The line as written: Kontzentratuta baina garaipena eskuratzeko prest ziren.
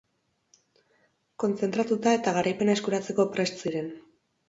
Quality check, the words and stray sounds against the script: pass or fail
fail